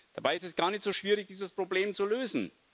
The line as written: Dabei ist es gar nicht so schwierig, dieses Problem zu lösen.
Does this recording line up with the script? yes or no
yes